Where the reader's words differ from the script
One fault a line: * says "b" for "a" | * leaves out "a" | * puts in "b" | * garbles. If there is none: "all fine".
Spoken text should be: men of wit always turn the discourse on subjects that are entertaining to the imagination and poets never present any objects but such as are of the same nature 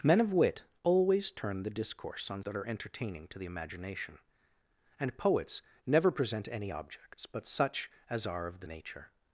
* leaves out "subjects"
* leaves out "same"